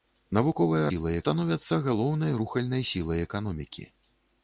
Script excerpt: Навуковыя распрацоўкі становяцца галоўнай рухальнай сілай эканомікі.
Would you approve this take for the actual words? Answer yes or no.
no